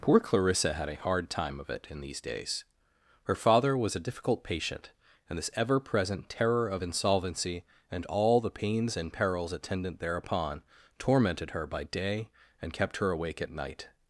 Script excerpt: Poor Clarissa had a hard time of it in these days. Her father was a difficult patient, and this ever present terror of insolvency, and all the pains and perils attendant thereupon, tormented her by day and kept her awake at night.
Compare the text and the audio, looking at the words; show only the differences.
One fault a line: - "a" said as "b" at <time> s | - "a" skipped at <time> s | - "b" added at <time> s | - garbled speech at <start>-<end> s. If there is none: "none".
none